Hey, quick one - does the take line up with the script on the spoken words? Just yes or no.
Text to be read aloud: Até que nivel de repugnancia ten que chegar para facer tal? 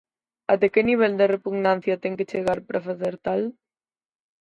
yes